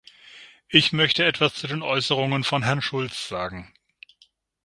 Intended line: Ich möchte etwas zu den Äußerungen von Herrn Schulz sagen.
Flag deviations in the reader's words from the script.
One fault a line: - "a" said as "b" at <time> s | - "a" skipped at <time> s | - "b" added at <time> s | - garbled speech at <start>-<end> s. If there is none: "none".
none